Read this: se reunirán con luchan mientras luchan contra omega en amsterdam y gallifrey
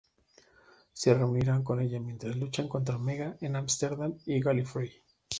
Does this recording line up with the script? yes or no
no